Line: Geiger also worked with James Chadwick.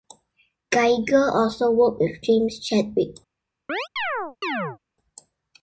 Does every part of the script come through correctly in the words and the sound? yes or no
no